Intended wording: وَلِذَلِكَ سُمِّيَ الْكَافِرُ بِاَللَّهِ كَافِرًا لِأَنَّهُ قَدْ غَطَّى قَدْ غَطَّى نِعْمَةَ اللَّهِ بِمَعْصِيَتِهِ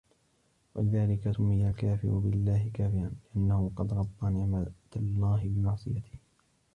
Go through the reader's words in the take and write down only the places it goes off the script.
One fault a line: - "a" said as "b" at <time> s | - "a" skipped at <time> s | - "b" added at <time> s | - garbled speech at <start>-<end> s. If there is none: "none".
- "قَدْ غَطَّى" skipped at 4.3 s